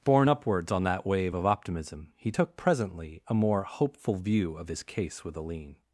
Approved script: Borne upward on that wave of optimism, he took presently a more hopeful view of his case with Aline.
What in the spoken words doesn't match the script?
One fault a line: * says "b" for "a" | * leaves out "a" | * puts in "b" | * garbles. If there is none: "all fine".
* says "upwards" for "upward"